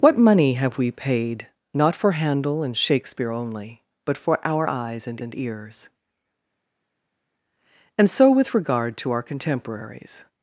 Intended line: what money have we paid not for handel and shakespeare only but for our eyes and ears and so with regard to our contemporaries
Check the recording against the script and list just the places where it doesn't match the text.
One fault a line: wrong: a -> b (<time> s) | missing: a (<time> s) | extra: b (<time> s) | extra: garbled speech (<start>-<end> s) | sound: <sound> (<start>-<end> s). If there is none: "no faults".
extra: and (5.2 s)